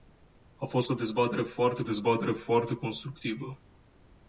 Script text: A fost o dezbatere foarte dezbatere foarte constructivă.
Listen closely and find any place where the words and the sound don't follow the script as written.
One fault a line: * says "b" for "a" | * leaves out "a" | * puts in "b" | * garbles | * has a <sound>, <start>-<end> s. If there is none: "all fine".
all fine